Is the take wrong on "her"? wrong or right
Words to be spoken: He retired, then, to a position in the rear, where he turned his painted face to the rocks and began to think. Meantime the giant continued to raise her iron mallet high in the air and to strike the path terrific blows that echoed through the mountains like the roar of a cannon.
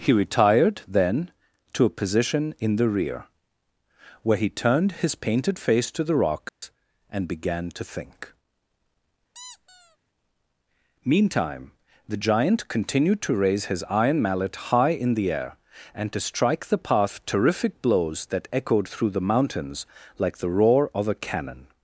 wrong